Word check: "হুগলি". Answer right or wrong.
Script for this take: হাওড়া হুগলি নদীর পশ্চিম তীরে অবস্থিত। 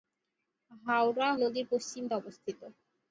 wrong